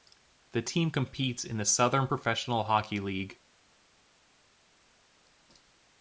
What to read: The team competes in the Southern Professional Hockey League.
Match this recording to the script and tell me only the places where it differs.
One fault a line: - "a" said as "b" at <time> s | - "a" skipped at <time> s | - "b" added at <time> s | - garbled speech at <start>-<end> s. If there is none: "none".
none